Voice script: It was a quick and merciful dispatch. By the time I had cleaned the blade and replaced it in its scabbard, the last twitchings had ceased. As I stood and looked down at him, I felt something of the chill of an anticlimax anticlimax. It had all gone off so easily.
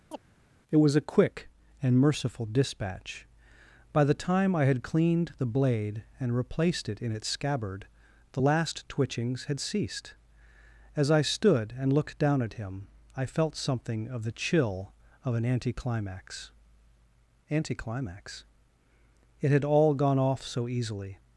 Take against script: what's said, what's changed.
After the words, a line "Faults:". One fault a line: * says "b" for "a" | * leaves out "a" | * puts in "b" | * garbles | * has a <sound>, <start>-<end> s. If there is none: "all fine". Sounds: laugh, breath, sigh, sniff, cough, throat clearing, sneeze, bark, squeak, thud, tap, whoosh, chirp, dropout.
It was a quick and merciful dispatch. By the time I had cleaned the blade and replaced it in its scabbard, the last twitchings had ceased. As I stood and looked down at him, I felt something of the chill of an anticlimax anticlimax. It had all gone off so easily.
Faults:
* has a chirp, 0.1-0.2 s